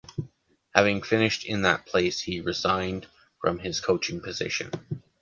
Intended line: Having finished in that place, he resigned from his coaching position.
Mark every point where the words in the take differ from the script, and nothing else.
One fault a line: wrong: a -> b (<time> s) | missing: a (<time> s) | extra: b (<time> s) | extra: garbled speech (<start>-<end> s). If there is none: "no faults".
no faults